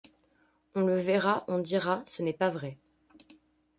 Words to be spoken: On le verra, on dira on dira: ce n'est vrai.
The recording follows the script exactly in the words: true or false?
false